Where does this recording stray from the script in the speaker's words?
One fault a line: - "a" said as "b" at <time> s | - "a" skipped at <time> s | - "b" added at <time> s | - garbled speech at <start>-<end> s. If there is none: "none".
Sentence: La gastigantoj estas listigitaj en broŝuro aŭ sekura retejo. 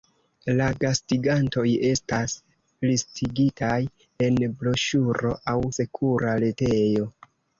none